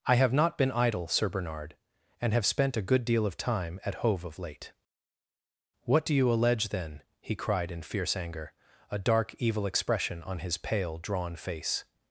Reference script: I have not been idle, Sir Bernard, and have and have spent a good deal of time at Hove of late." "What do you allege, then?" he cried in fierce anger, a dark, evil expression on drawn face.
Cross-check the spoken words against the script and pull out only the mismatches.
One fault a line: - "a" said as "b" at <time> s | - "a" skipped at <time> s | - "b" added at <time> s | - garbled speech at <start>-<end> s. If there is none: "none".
- "and have" skipped at 2.5 s
- "his pale" added at 10.4 s